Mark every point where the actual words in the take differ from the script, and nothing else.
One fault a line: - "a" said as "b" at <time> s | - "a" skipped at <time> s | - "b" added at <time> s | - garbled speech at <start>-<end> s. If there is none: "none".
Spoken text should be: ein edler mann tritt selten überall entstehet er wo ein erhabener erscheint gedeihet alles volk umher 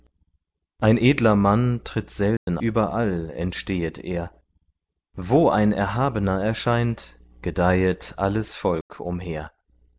none